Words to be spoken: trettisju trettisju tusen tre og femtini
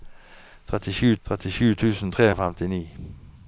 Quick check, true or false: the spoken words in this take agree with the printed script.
true